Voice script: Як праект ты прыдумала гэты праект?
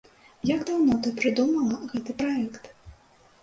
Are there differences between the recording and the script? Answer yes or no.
yes